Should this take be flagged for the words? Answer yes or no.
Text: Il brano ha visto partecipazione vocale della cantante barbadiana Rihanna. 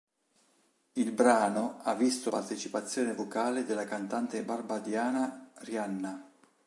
no